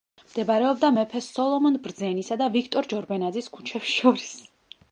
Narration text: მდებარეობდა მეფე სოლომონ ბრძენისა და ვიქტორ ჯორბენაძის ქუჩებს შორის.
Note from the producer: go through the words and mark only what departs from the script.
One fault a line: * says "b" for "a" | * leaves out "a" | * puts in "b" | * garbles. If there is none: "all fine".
all fine